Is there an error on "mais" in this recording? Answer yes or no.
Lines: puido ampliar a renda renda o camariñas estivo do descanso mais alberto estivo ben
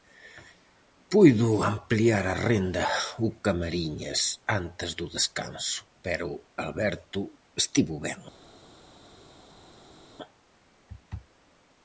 yes